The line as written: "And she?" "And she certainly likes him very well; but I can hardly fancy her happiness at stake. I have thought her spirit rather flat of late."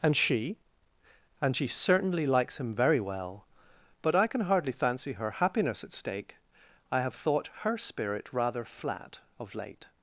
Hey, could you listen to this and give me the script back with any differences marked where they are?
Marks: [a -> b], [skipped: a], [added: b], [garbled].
"And she?" "And she certainly likes him very well; but I can hardly fancy her happiness at stake. I have thought her spirit rather flat of late."